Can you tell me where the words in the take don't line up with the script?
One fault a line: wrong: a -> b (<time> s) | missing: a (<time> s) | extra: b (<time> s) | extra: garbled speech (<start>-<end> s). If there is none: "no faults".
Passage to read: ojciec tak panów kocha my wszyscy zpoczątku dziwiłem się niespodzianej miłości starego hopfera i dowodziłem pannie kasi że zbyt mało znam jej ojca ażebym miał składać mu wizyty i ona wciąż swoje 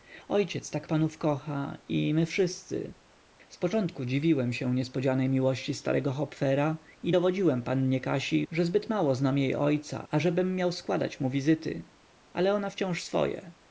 extra: i (1.9 s)
wrong: i -> ale (12.3 s)